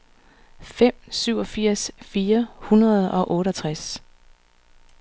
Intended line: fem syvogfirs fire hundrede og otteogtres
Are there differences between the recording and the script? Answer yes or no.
no